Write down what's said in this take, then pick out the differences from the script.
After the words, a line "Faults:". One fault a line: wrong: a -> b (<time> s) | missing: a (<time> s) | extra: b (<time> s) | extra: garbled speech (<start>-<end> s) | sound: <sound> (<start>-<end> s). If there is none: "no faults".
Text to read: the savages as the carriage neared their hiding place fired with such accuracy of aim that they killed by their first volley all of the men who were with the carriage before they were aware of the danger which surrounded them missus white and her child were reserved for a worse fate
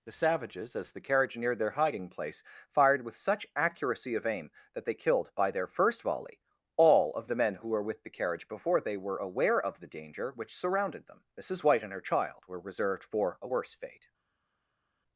the savages as the carriage neared their hiding place fired with such accuracy of aim that they killed by their first volley all of the men who were with the carriage before they were aware of the danger which surrounded them missus white and her child were reserved for a worse fate
Faults:
no faults